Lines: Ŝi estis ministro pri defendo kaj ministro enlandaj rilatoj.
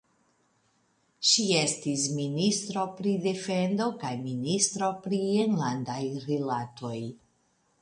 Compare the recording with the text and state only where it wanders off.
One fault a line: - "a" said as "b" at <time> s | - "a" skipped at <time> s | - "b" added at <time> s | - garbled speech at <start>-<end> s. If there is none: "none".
- "pri" added at 5.1 s